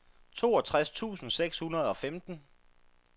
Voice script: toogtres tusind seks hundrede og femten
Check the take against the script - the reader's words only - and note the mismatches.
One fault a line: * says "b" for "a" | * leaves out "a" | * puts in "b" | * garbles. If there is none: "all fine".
all fine